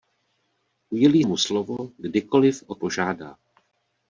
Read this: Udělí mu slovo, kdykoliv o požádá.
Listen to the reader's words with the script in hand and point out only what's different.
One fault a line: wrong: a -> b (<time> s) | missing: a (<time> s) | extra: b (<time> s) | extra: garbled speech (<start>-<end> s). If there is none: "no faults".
no faults